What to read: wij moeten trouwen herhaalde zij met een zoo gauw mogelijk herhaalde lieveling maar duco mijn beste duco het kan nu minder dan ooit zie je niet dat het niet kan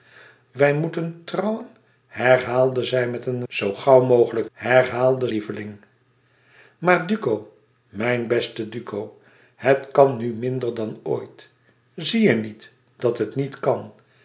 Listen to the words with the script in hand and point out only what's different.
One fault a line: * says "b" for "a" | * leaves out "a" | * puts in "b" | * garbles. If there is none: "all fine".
all fine